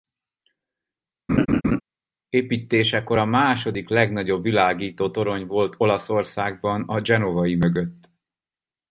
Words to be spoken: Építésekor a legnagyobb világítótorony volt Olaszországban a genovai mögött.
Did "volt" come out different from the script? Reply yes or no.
no